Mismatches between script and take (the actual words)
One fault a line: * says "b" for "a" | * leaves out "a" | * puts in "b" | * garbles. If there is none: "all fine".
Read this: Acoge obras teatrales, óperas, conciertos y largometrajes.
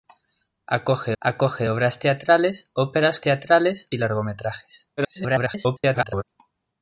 * puts in "acoge"
* says "teatrales" for "conciertos"
* garbles